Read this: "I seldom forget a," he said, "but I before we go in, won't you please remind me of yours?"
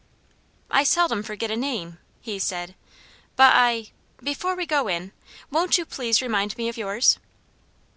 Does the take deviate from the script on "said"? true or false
false